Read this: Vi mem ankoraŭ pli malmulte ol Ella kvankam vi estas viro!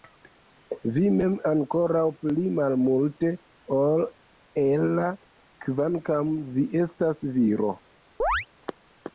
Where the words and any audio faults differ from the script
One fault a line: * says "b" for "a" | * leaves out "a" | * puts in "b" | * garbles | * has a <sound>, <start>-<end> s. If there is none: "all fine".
* has a chirp, 8.2-8.5 s